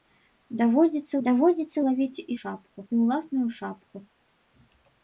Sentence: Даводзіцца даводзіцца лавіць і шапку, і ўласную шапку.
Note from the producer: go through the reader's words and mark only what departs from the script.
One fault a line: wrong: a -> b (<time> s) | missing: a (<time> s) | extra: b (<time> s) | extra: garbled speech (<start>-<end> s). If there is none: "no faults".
no faults